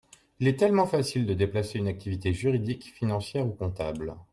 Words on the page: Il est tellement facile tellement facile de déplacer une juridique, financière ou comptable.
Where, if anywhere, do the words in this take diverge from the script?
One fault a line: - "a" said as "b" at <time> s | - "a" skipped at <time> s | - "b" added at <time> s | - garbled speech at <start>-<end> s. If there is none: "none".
- "tellement facile" skipped at 1.3 s
- "activité" added at 1.9 s